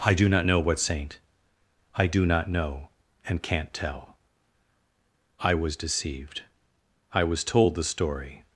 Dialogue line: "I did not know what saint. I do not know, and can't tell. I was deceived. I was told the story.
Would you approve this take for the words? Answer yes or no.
no